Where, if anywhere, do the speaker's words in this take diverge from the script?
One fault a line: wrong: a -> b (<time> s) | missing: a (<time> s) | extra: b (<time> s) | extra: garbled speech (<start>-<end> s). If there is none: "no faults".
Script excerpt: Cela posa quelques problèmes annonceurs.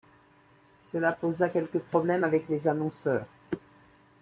extra: avec les (2.2 s)